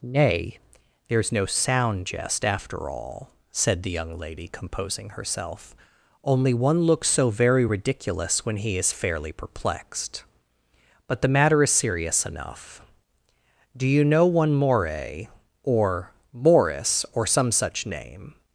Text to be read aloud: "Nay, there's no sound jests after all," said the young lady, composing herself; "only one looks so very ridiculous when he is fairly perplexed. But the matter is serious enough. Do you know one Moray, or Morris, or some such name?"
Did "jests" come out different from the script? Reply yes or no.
yes